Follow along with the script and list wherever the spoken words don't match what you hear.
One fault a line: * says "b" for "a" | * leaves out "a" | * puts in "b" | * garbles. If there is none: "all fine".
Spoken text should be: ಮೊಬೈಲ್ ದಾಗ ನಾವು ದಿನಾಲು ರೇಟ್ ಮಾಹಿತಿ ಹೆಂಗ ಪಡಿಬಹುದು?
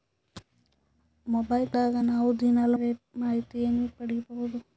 all fine